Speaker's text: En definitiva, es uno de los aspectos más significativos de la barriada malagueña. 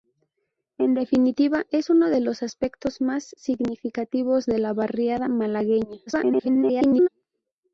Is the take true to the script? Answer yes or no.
no